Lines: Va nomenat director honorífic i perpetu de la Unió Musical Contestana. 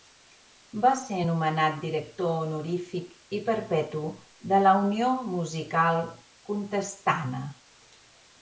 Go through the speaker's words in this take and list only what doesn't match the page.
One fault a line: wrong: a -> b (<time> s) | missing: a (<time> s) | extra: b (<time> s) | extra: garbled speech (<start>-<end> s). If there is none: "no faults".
extra: ser (1.0 s)